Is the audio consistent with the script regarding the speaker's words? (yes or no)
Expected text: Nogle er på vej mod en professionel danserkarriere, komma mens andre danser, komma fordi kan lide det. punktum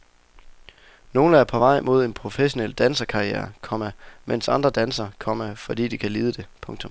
no